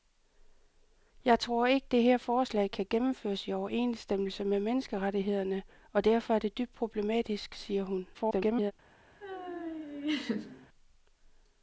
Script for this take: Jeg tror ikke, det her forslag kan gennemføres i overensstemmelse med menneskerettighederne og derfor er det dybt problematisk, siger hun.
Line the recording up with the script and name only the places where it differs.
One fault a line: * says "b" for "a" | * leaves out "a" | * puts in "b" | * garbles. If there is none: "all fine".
* garbles